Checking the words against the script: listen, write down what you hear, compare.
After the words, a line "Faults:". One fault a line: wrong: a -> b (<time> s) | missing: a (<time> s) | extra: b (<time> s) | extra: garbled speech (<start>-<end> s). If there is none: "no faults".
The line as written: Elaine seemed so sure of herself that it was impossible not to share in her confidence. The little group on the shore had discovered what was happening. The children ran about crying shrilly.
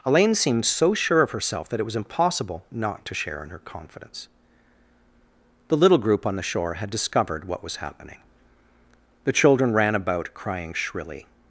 Elaine seemed so sure of herself that it was impossible not to share in her confidence. The little group on the shore had discovered what was happening. The children ran about crying shrilly.
Faults:
no faults